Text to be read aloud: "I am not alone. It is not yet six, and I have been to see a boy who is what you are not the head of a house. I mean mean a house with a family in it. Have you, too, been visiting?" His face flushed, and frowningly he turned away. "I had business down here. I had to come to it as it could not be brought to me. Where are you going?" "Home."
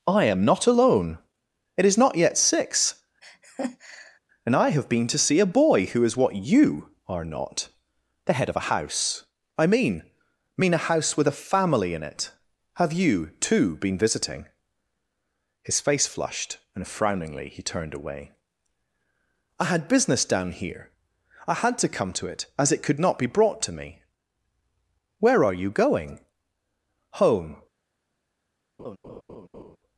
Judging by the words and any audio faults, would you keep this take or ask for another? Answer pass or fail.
fail